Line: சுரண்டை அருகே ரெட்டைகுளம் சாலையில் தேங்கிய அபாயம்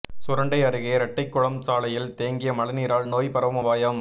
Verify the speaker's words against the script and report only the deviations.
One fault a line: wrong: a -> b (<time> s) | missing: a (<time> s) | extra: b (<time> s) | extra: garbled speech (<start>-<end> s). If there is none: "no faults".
extra: மழைநீரால் நோய் பரவும் (2.5 s)